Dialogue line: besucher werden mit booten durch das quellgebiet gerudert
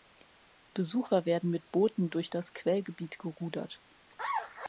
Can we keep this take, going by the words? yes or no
yes